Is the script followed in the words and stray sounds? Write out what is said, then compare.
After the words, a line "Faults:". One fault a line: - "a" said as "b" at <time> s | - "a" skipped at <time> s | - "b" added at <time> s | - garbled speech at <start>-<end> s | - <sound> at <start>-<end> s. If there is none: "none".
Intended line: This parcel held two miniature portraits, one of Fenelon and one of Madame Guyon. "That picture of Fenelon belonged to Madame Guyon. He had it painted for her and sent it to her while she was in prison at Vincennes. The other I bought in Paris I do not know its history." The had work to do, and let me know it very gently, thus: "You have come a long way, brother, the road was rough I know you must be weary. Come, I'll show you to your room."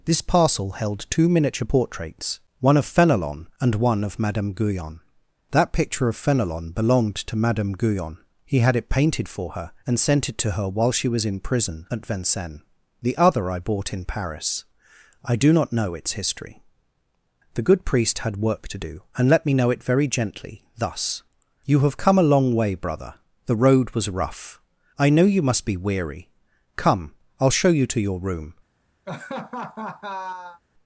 This parcel held two miniature portraits, one of Fenelon and one of Madame Guyon. "That picture of Fenelon belonged to Madame Guyon. He had it painted for her and sent it to her while she was in prison at Vincennes. The other I bought in Paris I do not know its history." The good priest had work to do, and let me know it very gently, thus: "You have come a long way, brother, the road was rough I know you must be weary. Come, I'll show you to your room."
Faults:
- "good priest" added at 17.6 s
- laugh at 29.1-30.6 s